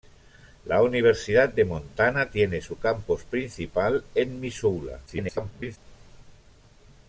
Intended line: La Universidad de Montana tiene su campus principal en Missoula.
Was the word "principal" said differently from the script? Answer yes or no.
no